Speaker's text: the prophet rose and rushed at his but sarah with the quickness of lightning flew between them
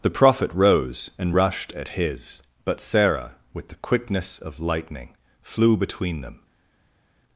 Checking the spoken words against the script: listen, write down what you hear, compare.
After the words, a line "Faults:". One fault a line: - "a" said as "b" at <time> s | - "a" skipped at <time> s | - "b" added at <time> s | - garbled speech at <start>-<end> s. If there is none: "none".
the prophet rose and rushed at his but sarah with the quickness of lightning flew between them
Faults:
none